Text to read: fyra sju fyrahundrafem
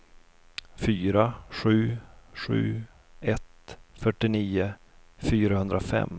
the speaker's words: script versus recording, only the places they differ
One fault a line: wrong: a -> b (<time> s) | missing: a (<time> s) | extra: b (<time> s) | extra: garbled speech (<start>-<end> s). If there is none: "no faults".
extra: sju ett fyrtionio (2.3 s)